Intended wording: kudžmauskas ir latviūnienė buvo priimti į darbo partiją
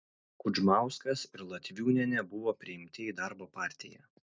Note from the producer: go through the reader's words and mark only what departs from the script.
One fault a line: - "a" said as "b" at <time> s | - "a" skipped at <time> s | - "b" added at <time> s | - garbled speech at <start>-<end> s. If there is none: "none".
none